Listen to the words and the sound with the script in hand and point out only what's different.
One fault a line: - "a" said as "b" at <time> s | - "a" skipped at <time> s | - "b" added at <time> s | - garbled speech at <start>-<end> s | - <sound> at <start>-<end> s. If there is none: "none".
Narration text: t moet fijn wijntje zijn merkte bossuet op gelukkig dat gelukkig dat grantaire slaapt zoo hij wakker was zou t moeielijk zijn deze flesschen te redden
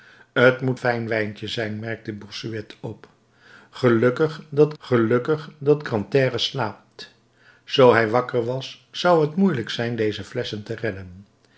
none